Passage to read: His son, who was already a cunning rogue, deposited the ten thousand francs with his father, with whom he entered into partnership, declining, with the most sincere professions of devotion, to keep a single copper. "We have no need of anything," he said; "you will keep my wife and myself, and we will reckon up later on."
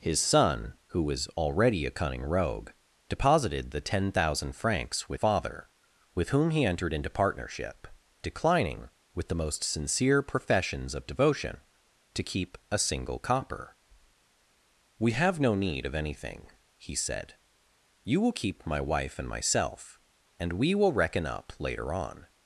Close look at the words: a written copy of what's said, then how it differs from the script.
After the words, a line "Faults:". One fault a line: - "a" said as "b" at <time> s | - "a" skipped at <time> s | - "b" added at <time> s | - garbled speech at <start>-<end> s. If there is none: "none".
His son, who was already a cunning rogue, deposited the ten thousand francs with father, with whom he entered into partnership, declining, with the most sincere professions of devotion, to keep a single copper. "We have no need of anything," he said; "you will keep my wife and myself, and we will reckon up later on."
Faults:
- "his" skipped at 5.2 s